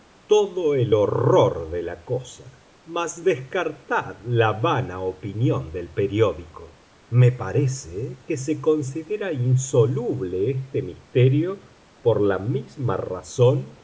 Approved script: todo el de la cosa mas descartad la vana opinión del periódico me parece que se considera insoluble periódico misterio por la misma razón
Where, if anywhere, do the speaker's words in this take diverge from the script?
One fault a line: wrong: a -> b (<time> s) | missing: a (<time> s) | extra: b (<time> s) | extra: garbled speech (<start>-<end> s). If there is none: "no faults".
extra: horror (0.9 s)
wrong: periódico -> este (10.5 s)